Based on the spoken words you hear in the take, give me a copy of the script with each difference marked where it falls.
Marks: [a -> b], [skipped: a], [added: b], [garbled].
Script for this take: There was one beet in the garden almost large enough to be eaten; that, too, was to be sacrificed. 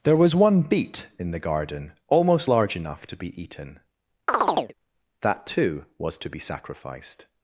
There was one beet in the garden almost large enough to be eaten; that, too, was to be sacrificed.